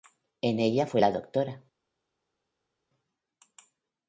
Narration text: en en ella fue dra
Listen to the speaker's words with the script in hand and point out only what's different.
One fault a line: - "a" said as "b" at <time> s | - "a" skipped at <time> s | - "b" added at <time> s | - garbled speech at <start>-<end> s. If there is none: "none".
- "en" skipped at 0.6 s
- "la" added at 1.0 s